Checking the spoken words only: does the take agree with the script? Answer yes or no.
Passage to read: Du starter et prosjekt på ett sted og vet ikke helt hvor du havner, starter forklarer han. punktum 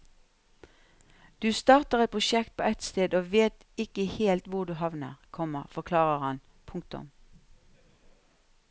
no